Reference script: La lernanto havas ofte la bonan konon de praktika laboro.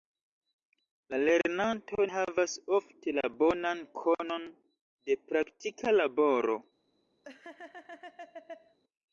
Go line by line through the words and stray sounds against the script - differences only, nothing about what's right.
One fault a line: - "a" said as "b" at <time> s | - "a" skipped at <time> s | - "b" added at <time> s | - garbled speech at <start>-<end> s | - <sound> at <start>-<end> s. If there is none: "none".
- laugh at 7.2-8.8 s